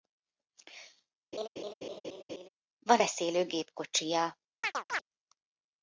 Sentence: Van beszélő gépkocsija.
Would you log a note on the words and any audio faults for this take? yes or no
yes